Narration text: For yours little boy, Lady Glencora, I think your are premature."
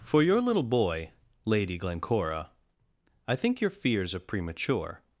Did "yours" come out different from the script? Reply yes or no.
yes